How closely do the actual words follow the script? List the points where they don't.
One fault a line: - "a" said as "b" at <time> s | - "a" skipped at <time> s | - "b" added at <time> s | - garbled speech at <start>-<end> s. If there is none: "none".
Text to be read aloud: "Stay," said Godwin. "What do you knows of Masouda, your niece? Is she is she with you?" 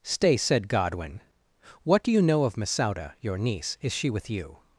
- "knows" said as "know" at 2.2 s
- "is she" skipped at 4.1 s